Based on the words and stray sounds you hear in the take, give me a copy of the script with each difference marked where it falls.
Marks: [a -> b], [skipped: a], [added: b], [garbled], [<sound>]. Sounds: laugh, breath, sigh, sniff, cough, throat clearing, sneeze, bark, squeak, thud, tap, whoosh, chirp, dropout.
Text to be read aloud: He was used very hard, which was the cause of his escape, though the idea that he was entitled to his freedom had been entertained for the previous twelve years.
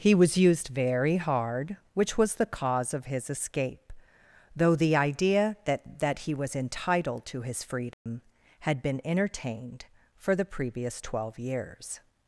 He was used very hard, which was the cause of his escape, though the idea that [added: that] he was entitled to his freedom [dropout] had been entertained for the previous twelve years.